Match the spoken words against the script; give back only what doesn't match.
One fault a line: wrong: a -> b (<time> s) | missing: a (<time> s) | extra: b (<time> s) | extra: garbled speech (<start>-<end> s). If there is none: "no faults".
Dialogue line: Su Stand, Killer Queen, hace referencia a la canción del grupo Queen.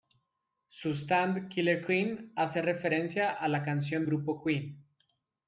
missing: del (4.0 s)